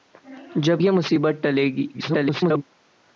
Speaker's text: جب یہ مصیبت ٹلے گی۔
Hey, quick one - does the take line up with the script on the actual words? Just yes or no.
no